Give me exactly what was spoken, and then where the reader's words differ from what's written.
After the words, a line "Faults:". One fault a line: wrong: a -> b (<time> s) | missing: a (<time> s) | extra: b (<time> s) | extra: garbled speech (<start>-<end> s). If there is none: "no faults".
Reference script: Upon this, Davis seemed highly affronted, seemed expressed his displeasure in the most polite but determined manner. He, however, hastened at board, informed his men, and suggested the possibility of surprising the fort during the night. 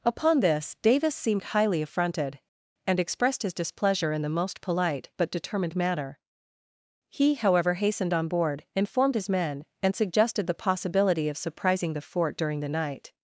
Upon this, Davis seemed highly affronted, and expressed his displeasure in the most polite but determined manner. He, however, hastened on board, informed his men, and suggested the possibility of surprising the fort during the night.
Faults:
wrong: seemed -> and (2.9 s)
wrong: at -> on (8.1 s)